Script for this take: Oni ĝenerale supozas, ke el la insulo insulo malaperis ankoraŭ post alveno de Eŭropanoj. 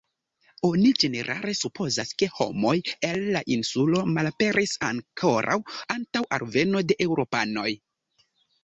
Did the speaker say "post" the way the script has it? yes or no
no